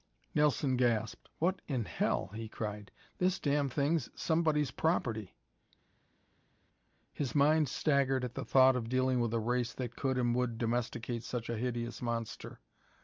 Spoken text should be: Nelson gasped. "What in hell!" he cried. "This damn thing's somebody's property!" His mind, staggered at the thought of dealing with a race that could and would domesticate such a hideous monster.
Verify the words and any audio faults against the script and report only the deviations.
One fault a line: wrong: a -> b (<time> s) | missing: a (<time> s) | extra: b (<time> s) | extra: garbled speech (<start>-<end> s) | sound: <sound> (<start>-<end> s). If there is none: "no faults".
no faults